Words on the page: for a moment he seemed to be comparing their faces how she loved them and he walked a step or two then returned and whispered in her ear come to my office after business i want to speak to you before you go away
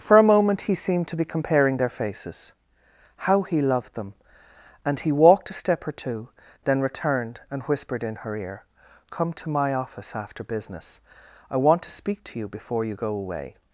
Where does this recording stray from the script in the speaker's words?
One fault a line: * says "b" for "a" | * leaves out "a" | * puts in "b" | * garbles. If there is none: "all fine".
* says "he" for "she"